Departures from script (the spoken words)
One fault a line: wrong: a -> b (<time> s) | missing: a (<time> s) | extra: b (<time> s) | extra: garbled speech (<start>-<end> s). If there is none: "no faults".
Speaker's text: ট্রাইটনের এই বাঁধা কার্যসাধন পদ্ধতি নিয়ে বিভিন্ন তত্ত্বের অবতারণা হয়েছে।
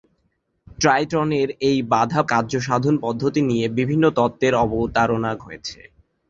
no faults